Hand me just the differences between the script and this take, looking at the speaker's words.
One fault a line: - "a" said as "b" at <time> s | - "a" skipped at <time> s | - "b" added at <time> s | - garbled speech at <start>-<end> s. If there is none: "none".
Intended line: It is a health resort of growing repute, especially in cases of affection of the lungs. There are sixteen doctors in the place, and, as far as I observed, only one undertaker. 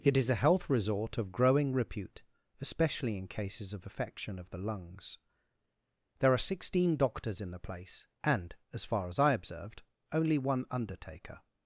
none